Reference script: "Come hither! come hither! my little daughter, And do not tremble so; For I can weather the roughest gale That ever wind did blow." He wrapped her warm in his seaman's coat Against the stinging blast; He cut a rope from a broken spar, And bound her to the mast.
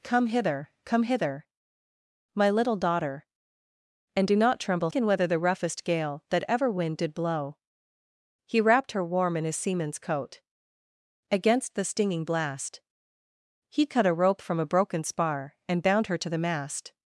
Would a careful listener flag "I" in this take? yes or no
yes